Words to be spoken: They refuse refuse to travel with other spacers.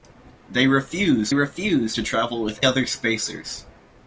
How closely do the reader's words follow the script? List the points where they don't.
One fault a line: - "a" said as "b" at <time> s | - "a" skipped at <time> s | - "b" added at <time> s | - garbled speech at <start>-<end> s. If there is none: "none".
none